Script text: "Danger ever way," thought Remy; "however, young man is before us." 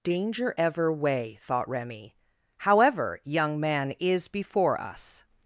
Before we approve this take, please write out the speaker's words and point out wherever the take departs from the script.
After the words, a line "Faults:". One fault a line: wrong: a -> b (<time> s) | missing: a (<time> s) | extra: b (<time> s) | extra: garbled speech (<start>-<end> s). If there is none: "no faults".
"Danger ever way," thought Remy; "however, young man is before us."
Faults:
no faults